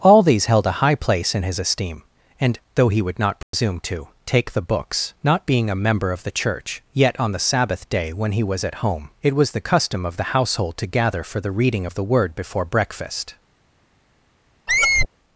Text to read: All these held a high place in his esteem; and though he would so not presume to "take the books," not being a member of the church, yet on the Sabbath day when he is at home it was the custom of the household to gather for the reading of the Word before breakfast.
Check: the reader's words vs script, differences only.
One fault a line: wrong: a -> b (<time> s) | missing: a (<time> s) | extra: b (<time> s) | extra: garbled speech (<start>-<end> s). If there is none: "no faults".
missing: so (3.2 s)
wrong: is -> was (8.4 s)